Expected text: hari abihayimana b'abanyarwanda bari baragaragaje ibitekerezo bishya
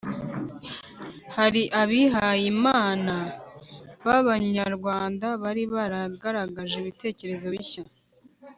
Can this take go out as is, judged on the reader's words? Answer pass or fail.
pass